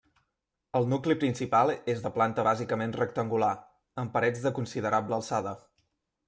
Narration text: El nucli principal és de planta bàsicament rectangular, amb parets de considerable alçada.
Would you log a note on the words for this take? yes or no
no